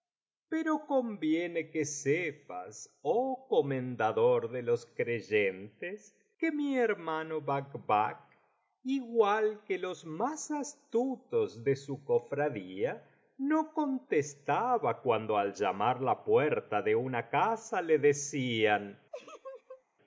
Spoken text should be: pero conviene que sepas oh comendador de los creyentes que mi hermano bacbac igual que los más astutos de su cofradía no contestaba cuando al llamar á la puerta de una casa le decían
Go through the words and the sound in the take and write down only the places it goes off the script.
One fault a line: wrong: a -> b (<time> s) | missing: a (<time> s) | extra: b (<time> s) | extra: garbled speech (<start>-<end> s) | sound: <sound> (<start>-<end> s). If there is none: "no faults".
sound: laugh (19.1-19.8 s)